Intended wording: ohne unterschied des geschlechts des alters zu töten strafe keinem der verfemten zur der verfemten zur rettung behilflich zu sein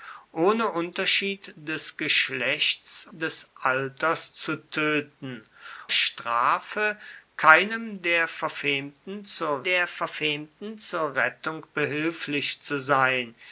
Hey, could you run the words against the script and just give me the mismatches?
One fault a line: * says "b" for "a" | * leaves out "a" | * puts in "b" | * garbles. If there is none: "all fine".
all fine